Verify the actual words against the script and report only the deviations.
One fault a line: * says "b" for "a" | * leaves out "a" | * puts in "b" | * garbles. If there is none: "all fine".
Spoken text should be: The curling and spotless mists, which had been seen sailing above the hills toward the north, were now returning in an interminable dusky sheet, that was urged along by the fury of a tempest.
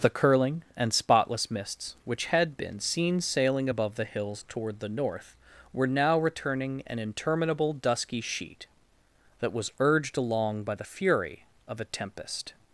* leaves out "in"